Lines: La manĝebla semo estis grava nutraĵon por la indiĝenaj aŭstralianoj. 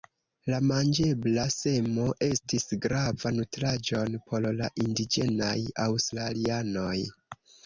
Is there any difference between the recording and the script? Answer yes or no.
no